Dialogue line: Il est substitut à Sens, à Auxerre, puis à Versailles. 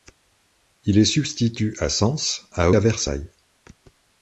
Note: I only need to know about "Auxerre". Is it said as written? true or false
false